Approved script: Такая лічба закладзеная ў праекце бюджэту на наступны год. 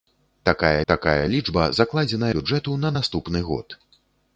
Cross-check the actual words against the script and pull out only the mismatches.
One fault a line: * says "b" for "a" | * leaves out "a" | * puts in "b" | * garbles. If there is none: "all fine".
* puts in "такая"
* leaves out "ў праекце"